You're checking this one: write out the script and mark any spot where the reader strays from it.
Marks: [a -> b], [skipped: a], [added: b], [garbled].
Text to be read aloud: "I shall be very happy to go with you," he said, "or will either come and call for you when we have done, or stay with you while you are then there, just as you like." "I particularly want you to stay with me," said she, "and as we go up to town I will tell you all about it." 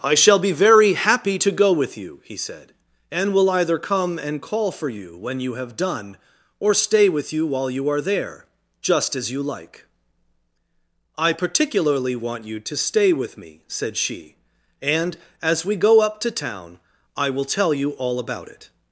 "I shall be very happy to go with you," he said, ["or -> and] will either come and call for you when [we -> you] have done, or stay with you while you are [skipped: then] there, just as you like." "I particularly want you to stay with me," said she, "and as we go up to town I will tell you all about it."